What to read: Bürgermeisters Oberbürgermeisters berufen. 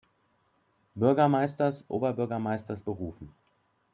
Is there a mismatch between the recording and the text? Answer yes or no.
no